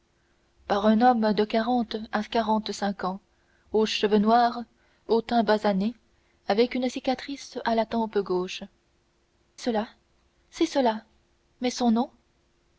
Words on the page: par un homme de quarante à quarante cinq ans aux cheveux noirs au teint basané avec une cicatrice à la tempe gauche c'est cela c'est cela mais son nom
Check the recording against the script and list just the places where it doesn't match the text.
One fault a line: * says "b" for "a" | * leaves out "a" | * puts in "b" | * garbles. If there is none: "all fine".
* leaves out "c'est"